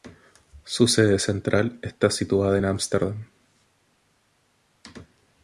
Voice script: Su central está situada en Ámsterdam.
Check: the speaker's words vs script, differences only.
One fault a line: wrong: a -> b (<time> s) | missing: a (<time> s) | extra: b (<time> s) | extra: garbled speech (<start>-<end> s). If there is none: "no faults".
extra: sede (0.9 s)